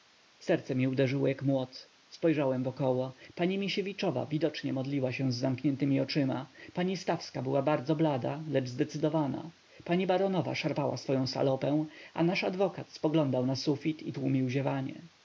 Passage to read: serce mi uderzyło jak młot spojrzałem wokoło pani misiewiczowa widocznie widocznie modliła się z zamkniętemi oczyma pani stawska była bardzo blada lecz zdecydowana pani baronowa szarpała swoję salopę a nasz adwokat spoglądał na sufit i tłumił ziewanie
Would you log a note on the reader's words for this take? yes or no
yes